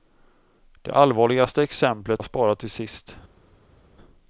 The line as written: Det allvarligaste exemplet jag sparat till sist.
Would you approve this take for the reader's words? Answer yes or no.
yes